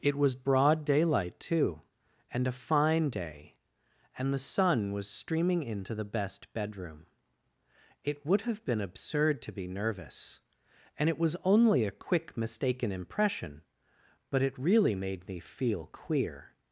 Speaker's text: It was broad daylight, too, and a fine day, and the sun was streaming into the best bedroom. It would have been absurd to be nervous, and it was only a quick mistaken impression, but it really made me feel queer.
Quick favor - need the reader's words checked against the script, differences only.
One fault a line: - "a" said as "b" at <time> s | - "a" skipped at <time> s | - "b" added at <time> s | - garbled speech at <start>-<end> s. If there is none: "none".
none